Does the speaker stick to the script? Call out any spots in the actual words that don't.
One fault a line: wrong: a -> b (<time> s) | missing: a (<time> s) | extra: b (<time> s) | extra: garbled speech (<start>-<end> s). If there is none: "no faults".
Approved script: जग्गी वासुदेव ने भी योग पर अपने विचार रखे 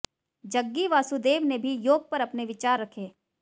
no faults